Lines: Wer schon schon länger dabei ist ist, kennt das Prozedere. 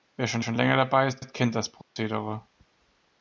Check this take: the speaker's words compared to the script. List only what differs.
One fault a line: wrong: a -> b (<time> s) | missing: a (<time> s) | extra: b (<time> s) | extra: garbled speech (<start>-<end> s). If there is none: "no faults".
no faults